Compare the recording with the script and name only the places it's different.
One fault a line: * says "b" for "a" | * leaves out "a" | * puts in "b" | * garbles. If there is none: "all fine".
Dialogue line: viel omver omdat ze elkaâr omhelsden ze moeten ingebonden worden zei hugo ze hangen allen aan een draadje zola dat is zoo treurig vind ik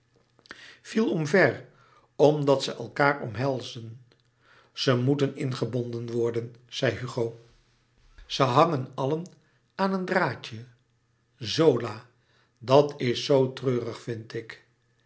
all fine